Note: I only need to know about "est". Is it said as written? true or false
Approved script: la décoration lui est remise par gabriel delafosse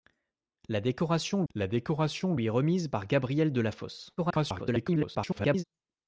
true